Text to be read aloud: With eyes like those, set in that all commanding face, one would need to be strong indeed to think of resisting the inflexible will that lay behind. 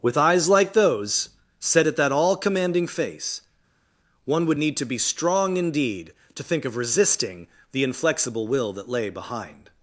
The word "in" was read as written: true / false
false